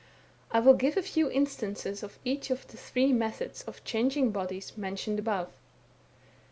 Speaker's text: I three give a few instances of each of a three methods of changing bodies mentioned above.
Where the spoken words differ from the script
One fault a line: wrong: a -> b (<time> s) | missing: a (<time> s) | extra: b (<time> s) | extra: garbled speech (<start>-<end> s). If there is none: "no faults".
wrong: three -> will (0.6 s)
wrong: a -> the (2.6 s)